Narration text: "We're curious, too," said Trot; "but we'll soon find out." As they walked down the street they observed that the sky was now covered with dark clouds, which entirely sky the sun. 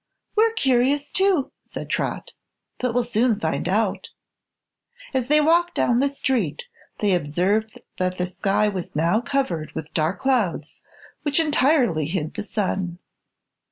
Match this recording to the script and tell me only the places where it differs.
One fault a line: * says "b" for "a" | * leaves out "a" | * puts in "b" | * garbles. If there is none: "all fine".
* says "hid" for "sky"